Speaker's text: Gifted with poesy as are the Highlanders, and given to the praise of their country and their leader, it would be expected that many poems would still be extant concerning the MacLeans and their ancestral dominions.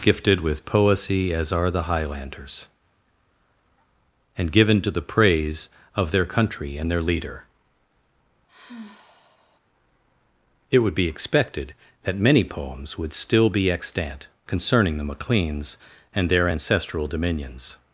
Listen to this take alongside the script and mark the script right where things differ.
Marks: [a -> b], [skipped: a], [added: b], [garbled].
Gifted with poesy as are the Highlanders, and given to the praise of their country and their leader, it would be expected that many poems would still be extant concerning the MacLeans and their ancestral dominions.